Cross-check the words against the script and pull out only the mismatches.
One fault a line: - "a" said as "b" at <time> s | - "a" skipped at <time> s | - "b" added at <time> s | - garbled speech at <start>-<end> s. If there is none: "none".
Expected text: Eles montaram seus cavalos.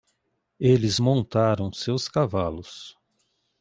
none